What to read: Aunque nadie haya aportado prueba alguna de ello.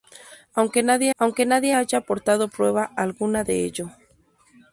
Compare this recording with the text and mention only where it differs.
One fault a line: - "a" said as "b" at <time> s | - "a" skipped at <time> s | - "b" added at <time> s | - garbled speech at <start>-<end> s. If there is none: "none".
- "aunque nadie" added at 1.2 s